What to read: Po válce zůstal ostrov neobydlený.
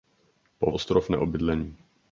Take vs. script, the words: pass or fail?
fail